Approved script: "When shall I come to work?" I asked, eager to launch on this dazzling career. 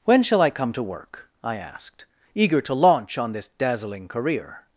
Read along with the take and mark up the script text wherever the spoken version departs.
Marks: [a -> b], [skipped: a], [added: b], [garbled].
"When shall I come to work?" I asked, eager to launch on this dazzling career.